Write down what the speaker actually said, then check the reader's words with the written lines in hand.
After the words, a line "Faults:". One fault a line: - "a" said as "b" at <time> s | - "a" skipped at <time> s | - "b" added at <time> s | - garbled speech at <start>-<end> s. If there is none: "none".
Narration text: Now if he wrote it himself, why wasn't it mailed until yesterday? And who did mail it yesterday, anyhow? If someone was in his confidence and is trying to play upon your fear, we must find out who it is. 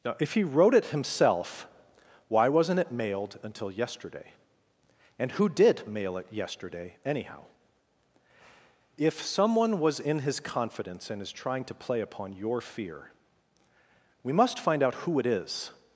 Now if he wrote it himself, why wasn't it mailed until yesterday? And who did mail it yesterday, anyhow? If someone was in his confidence and is trying to play upon your fear, we must find out who it is.
Faults:
none